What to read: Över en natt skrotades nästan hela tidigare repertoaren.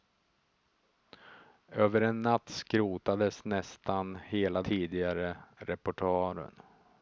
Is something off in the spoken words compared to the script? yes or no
no